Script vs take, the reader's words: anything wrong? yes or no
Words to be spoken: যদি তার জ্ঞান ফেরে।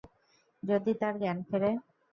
no